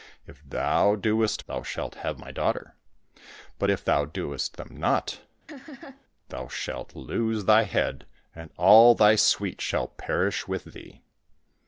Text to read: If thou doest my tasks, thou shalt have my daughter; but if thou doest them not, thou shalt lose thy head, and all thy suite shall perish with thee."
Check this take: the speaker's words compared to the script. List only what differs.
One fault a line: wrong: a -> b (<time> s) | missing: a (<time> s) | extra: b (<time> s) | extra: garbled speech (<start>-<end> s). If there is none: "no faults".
missing: my tasks (1.4 s)